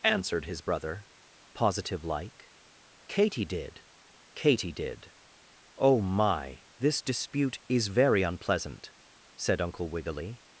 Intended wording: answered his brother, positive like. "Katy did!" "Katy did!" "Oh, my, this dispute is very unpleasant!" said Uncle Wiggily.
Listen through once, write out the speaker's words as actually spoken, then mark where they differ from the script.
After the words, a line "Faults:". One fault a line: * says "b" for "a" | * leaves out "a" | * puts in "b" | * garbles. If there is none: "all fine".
answered his brother, positive like. "Katy did!" "Katy did!" "Oh, my, this dispute is very unpleasant!" said Uncle Wiggily.
Faults:
all fine